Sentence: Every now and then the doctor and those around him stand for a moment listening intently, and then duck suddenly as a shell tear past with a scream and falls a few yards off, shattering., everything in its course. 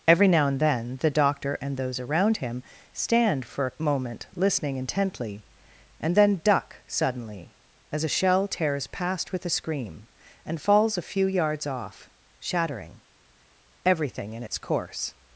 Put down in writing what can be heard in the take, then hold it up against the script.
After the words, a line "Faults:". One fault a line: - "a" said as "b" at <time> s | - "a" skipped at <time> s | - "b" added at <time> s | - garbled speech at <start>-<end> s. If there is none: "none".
Every now and then the doctor and those around him stand for a moment listening intently, and then duck suddenly as a shell tears past with a scream and falls a few yards off, shattering., everything in its course.
Faults:
- "tear" said as "tears" at 8.5 s